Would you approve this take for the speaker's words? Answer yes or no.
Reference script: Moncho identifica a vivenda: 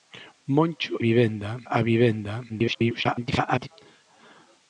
no